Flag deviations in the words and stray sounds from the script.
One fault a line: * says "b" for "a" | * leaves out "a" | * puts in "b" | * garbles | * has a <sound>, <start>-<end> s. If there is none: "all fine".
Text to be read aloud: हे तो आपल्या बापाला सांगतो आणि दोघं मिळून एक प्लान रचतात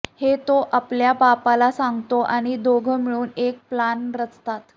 all fine